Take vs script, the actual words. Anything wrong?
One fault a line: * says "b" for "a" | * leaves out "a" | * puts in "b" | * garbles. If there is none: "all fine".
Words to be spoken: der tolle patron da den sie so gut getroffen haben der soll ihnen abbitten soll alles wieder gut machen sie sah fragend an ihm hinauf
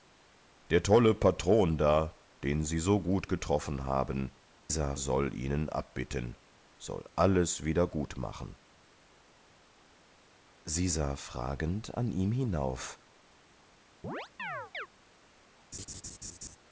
* says "sah" for "der"